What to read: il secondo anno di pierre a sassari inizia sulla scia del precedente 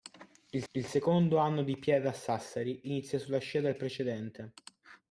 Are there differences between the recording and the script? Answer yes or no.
yes